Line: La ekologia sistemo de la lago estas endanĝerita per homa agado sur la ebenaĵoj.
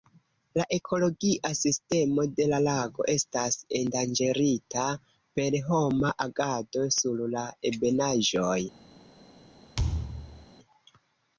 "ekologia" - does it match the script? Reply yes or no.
yes